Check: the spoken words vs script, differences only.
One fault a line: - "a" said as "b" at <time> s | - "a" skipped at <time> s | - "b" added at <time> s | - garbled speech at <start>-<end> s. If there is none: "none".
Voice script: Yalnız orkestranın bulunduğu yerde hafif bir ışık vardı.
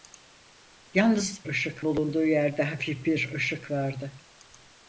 - "orkestranın" said as "ışık" at 1.5 s